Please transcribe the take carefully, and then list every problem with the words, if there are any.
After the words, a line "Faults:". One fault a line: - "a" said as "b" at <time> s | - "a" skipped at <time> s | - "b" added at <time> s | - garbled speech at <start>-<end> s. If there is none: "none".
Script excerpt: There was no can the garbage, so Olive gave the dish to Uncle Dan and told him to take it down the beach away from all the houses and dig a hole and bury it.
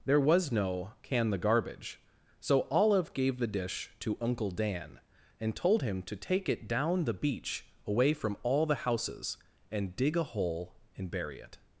There was no can the garbage, so Olive gave the dish to Uncle Dan and told him to take it down the beach away from all the houses and dig a hole and bury it.
Faults:
none